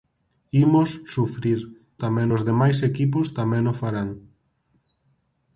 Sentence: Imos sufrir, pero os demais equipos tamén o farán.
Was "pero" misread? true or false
true